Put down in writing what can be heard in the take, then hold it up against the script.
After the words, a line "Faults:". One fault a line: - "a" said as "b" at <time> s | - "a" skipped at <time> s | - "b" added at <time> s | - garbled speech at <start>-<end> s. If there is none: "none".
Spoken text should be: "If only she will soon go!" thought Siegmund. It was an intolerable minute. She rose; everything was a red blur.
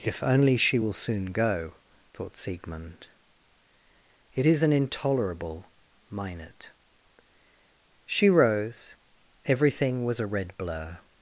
"If only she will soon go!" thought Siegmund. It is an intolerable minute. She rose; everything was a red blur.
Faults:
- "was" said as "is" at 4.5 s